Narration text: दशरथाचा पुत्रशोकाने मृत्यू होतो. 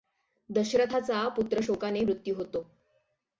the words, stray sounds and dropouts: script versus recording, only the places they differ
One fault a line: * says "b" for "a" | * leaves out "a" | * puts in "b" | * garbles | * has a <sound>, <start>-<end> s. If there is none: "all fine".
all fine